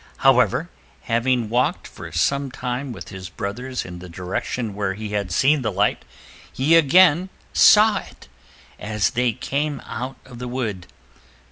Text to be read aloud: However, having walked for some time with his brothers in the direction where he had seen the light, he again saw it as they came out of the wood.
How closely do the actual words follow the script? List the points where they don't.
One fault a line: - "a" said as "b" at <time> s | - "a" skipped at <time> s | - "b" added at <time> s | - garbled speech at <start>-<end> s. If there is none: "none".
none